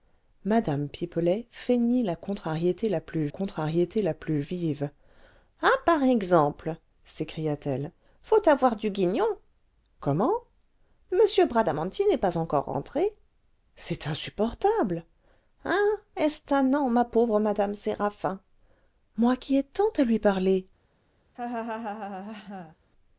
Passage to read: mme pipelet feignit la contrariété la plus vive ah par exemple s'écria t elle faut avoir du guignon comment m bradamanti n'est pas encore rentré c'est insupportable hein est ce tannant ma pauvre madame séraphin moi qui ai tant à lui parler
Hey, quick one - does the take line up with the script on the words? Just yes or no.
no